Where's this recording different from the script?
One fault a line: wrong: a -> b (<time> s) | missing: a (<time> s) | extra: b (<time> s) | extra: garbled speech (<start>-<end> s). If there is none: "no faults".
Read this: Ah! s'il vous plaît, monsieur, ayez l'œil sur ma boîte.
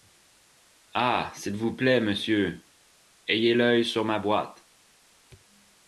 no faults